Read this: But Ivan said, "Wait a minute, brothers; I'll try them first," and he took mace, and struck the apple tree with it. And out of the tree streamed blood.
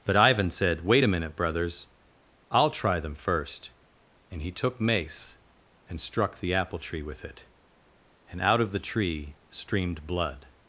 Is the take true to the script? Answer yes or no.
yes